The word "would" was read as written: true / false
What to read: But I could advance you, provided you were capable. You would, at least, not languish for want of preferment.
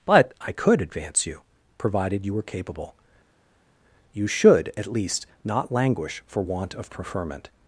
false